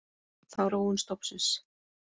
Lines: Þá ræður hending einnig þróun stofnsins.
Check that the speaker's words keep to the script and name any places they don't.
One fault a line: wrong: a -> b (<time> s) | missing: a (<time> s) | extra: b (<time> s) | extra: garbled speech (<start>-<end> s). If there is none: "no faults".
missing: ræður hending einnig (0.6 s)